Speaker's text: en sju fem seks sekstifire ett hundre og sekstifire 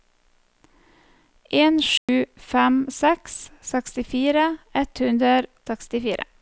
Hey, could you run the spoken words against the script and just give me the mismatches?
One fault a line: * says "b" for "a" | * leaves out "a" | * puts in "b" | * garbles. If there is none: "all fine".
* leaves out "og"